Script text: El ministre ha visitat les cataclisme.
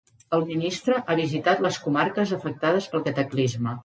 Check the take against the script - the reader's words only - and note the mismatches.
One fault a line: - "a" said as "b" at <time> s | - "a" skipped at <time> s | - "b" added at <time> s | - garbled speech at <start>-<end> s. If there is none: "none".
- "comarques afectades pel" added at 1.8 s